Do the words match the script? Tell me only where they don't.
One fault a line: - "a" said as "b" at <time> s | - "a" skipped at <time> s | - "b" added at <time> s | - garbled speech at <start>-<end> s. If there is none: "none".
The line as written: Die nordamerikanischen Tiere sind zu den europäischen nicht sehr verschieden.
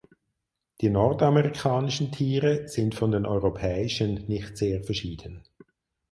- "zu" said as "von" at 3.0 s